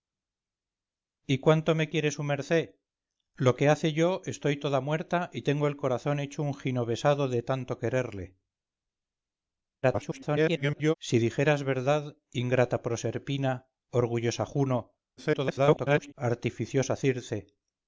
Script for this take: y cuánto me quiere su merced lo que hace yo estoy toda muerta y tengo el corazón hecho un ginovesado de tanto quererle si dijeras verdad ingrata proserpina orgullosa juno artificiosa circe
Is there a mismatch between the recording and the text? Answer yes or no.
yes